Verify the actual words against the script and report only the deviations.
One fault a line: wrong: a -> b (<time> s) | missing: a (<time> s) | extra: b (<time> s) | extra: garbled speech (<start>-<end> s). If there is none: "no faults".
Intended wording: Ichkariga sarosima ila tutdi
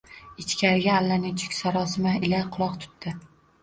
extra: allanechuk (1.0 s)
extra: quloq (2.6 s)